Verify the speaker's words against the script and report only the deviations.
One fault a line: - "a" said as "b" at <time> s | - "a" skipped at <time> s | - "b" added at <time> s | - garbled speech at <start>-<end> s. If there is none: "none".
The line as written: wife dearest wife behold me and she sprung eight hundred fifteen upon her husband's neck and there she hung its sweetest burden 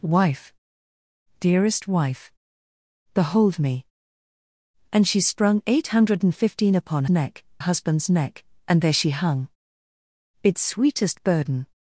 - "her" said as "neck" at 7.1 s